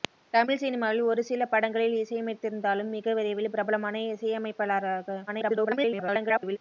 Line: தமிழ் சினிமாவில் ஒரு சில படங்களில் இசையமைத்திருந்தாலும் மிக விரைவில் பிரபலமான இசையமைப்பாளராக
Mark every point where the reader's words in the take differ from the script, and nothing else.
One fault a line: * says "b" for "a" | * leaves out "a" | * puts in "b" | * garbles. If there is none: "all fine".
* garbles